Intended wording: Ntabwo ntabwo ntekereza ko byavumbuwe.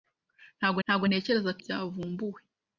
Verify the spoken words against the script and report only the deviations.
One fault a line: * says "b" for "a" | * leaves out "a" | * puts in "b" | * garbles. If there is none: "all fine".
all fine